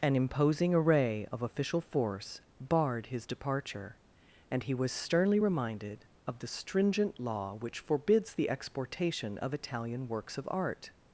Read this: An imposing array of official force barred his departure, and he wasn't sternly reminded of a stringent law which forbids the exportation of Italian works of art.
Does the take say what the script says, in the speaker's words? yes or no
no